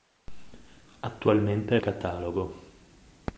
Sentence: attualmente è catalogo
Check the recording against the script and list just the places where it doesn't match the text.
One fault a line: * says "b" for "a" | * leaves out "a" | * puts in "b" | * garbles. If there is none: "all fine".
all fine